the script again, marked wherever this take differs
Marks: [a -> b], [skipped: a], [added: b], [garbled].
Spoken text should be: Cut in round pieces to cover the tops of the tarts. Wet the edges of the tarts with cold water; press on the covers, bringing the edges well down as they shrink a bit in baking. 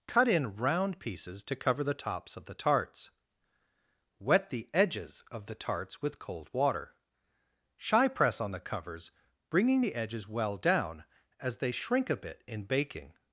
Cut in round pieces to cover the tops of the tarts. Wet the edges of the tarts with cold water; [added: shy] press on the covers, bringing the edges well down as they shrink a bit in baking.